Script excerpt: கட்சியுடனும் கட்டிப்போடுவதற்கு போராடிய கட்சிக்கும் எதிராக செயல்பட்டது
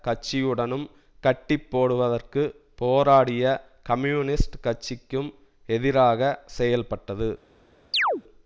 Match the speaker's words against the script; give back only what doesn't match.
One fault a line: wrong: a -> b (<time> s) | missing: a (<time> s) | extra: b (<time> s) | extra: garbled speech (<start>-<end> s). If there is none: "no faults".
extra: கம்யூனிஸ்ட் (3.8 s)